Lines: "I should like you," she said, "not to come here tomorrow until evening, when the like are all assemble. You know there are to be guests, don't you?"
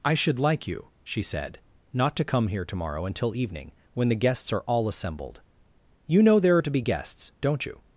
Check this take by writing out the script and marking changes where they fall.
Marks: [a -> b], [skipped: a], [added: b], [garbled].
"I should like you," she said, "not to come here tomorrow until evening, when the [like -> guests] are all [assemble. -> assembled] You know there are to be guests, don't you?"